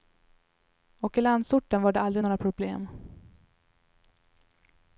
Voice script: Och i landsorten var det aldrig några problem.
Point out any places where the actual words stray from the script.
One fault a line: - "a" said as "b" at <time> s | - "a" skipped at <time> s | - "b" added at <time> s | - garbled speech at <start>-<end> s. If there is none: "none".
none